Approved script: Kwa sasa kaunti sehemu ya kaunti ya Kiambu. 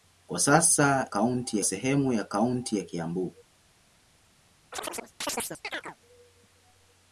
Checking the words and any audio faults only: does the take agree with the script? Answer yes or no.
no